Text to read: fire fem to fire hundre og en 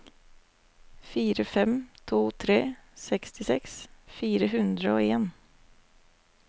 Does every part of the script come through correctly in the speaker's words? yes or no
no